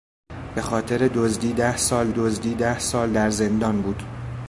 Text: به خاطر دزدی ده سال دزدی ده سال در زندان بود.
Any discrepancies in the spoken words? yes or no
no